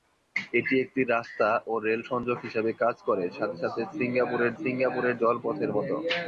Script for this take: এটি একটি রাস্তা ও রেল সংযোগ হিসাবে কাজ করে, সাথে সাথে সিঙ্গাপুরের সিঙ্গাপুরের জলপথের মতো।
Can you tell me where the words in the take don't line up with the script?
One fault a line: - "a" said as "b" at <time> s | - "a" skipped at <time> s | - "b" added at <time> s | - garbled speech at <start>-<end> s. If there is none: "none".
none